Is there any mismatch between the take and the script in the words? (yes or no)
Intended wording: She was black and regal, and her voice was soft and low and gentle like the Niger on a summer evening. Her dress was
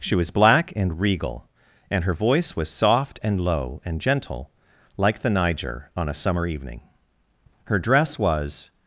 no